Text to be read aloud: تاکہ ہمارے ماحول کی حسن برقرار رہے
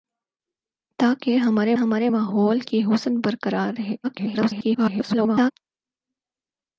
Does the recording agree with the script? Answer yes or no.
no